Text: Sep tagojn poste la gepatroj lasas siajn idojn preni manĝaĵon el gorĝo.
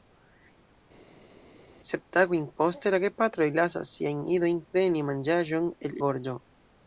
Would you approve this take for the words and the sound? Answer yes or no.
yes